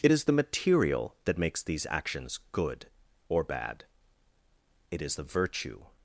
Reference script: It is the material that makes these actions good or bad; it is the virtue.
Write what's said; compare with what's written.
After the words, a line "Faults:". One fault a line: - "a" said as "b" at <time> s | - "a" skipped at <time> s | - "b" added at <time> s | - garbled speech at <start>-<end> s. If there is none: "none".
It is the material that makes these actions good or bad; it is the virtue.
Faults:
none